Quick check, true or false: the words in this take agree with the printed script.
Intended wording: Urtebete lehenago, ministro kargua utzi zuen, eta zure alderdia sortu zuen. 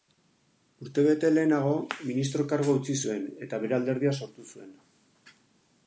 false